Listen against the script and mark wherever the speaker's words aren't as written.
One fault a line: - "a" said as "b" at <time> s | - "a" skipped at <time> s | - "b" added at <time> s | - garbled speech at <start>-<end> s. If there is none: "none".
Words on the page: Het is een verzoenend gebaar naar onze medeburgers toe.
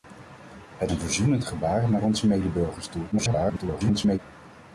- "is" skipped at 0.9 s
- garbled speech at 3.1-4.2 s